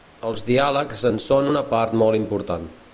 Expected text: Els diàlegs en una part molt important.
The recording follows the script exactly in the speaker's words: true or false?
false